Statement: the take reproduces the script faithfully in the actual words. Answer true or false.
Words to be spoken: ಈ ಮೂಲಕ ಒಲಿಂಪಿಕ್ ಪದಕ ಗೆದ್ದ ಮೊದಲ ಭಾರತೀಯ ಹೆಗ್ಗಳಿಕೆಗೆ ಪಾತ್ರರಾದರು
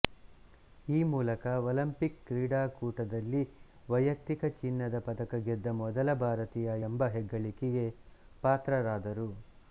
false